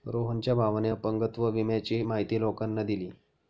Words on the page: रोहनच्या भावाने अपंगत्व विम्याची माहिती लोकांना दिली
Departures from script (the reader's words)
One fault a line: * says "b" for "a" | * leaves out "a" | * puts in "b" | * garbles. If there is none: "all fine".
all fine